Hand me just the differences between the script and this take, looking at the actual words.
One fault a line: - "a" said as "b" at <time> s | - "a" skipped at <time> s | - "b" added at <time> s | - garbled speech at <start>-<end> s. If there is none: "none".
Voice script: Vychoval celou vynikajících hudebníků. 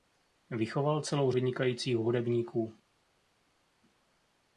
none